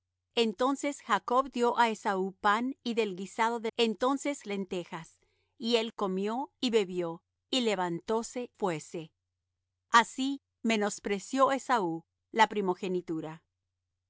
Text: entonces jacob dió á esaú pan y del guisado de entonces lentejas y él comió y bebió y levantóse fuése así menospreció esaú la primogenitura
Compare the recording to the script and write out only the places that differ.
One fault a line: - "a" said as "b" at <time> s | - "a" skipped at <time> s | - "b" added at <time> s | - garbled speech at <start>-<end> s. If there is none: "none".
none